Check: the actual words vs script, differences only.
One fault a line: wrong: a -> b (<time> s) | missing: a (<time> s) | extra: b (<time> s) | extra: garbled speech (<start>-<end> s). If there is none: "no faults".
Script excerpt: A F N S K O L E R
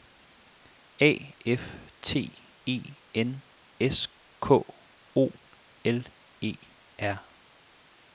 extra: T E (2.0 s)